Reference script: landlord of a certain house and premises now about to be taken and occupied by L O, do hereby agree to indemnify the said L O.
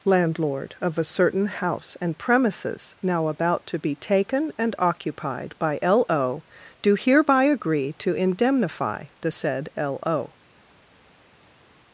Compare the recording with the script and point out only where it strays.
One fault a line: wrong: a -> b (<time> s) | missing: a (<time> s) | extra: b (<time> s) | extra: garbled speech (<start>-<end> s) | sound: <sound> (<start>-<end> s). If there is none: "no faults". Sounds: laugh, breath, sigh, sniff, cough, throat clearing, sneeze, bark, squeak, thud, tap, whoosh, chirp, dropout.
no faults